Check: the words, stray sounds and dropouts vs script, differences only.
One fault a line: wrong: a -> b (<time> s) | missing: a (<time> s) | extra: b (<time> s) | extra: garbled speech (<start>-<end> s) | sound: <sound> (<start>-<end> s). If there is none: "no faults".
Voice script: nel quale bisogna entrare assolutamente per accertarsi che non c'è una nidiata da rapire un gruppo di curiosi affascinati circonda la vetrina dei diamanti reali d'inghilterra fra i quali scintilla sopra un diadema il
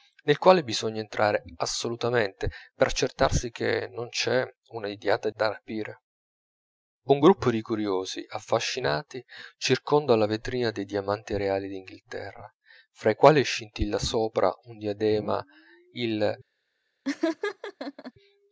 sound: laugh (17.0-18.1 s)